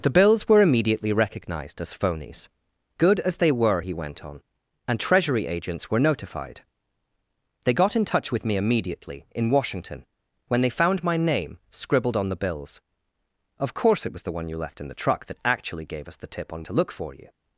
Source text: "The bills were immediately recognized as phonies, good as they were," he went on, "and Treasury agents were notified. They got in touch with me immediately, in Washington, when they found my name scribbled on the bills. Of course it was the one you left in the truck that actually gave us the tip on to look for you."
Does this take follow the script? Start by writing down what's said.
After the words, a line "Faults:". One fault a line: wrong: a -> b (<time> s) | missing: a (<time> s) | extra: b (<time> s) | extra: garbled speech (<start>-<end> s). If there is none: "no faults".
"The bills were immediately recognized as phonies, good as they were," he went on, "and Treasury agents were notified. They got in touch with me immediately, in Washington, when they found my name scribbled on the bills. Of course it was the one you left in the truck that actually gave us the tip on to look for you."
Faults:
no faults